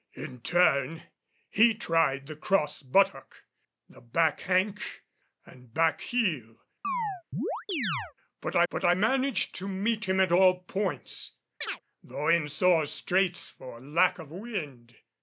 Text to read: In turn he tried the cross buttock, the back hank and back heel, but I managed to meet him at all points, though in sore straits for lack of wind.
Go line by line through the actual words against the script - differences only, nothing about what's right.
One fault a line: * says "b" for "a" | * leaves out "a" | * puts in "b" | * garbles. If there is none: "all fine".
* puts in "but I"